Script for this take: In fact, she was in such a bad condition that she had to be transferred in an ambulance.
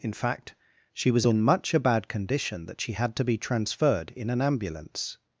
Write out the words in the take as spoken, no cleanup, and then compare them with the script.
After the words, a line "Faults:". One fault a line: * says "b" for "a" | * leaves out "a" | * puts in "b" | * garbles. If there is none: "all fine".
In fact, she was in much a bad condition that she had to be transferred in an ambulance.
Faults:
* says "much" for "such"